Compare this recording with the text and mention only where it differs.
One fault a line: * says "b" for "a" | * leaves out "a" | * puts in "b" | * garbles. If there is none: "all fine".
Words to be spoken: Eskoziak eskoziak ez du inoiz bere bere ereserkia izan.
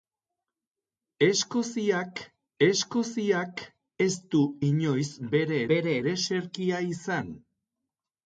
all fine